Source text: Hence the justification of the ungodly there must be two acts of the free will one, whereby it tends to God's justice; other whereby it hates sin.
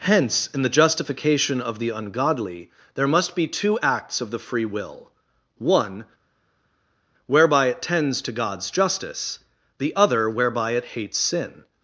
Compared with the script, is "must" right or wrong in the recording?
right